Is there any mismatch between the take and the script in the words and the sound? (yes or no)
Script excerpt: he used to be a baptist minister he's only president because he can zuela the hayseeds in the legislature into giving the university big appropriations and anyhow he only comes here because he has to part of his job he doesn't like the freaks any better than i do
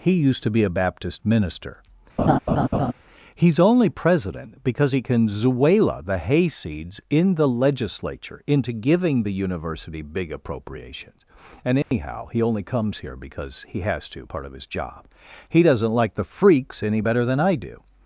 yes